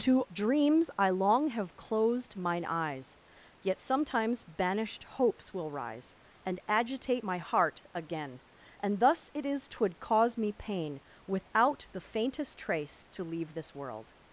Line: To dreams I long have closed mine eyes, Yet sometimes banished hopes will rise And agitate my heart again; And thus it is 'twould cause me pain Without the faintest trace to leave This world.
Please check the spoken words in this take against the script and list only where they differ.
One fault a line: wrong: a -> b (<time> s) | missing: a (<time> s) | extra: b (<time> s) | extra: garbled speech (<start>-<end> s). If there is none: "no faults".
no faults